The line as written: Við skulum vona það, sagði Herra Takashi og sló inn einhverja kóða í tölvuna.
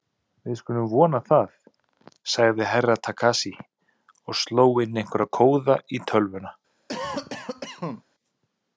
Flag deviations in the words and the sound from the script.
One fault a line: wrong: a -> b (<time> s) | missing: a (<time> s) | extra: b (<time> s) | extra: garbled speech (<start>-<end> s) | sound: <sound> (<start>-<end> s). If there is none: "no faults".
sound: cough (6.9-8.0 s)